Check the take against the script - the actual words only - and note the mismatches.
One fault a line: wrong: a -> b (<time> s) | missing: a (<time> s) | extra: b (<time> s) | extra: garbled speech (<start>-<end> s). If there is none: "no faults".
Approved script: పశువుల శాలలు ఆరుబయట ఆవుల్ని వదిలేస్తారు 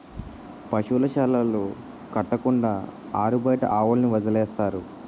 extra: కట్టకుండా (2.1 s)